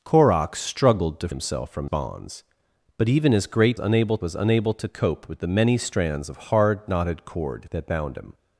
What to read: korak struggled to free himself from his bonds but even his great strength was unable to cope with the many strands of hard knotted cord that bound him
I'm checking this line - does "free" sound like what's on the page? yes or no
no